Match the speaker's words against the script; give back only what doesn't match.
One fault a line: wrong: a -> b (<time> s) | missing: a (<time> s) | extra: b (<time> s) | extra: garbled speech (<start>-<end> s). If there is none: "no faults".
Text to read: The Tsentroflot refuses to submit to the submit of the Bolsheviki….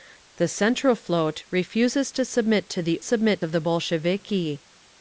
no faults